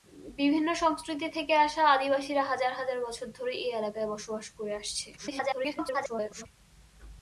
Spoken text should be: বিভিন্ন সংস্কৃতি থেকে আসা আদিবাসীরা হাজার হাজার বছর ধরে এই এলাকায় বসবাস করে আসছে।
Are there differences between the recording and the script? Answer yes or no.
yes